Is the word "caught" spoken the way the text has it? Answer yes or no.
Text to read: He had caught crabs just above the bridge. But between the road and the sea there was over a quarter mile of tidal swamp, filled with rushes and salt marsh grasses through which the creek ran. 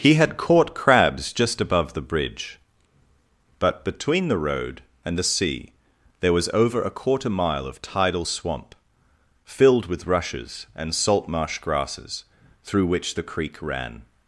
yes